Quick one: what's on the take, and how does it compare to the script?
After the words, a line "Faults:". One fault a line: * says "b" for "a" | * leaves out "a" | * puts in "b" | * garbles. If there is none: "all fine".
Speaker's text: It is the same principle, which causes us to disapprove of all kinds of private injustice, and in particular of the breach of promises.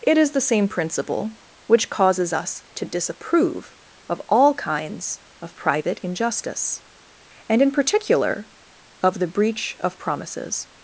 It is the same principle, which causes us to disapprove of all kinds of private injustice, and in particular of the breach of promises.
Faults:
all fine